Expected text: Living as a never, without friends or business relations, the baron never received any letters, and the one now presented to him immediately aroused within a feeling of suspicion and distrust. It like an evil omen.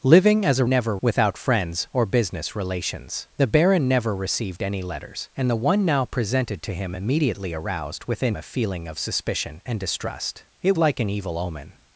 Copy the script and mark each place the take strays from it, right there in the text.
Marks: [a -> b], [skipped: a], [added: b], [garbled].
Living as a never, without friends or business relations, the baron never received any letters, and the one now presented to him immediately aroused within a feeling of suspicion and distrust. It like an evil omen.